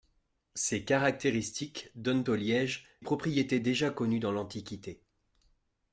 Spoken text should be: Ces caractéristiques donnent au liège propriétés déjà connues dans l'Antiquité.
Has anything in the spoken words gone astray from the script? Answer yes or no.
no